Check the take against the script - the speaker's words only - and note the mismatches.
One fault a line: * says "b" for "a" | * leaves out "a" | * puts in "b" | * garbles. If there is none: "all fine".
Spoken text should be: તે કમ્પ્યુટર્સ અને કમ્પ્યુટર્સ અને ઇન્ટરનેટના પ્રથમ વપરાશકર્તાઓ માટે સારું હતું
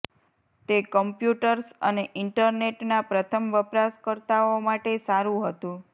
* leaves out "કમ્પ્યુટર્સ અને"